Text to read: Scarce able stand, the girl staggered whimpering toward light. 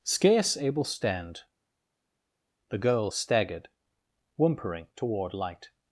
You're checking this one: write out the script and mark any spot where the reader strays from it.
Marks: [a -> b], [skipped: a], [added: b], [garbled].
Scarce able stand, the girl staggered whimpering toward light.